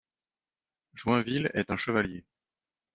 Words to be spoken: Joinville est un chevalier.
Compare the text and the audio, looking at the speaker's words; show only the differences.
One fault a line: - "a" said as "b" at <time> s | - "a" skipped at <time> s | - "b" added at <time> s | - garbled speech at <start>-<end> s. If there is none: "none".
none